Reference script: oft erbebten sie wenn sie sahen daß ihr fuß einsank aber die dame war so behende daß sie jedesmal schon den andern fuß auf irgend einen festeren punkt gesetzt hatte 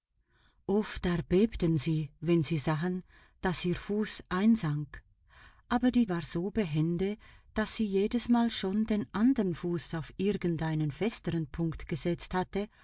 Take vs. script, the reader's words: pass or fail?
fail